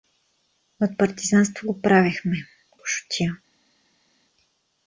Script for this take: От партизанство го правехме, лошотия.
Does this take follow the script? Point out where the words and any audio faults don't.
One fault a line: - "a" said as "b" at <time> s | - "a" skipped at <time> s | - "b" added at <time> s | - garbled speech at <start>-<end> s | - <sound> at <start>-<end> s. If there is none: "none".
none